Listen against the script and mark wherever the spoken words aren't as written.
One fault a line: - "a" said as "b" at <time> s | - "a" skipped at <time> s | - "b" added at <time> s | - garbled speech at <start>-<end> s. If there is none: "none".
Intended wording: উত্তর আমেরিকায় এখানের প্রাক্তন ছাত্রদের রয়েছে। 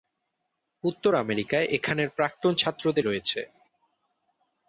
none